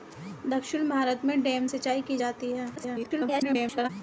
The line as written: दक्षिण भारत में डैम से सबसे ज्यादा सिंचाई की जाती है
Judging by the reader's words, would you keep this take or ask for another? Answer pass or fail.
fail